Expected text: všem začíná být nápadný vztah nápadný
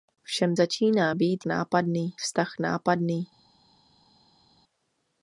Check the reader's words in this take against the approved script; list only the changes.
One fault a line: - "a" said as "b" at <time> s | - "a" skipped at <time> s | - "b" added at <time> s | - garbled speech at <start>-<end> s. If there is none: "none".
none